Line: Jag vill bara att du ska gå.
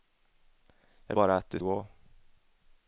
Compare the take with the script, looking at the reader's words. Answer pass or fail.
fail